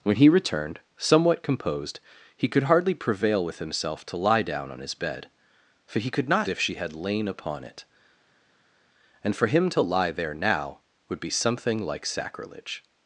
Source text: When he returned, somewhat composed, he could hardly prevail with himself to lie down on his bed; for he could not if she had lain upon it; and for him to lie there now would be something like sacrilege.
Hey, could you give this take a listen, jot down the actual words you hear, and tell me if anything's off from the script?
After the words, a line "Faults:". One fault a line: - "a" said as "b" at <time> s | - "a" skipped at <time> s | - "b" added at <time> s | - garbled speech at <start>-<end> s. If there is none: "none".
When he returned, somewhat composed, he could hardly prevail with himself to lie down on his bed; for he could not if she had lain upon it; and for him to lie there now would be something like sacrilege.
Faults:
none